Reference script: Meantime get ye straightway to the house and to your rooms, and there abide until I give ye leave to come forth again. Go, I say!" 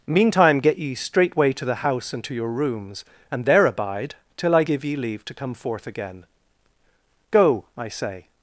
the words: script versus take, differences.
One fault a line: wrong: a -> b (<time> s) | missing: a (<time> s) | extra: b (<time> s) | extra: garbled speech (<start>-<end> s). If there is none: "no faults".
wrong: until -> till (4.3 s)